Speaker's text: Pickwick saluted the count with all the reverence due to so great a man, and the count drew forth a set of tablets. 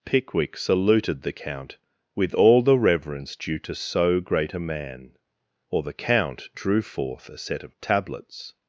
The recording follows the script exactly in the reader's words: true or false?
false